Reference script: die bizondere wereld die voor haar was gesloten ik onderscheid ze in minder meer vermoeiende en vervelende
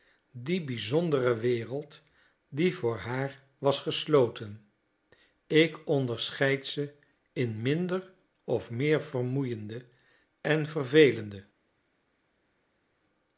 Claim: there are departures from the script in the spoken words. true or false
true